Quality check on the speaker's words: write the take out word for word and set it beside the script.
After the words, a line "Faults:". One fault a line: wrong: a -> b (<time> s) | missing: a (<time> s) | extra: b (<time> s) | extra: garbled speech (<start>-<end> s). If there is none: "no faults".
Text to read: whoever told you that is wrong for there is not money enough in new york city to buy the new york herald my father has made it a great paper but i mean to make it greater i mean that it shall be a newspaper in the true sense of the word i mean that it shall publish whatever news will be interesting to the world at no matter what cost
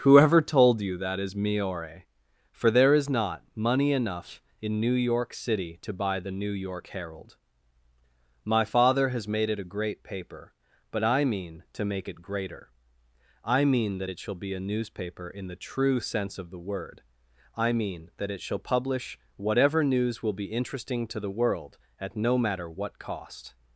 whoever told you that is miore for there is not money enough in new york city to buy the new york herald my father has made it a great paper but i mean to make it greater i mean that it shall be a newspaper in the true sense of the word i mean that it shall publish whatever news will be interesting to the world at no matter what cost
Faults:
wrong: wrong -> miore (1.4 s)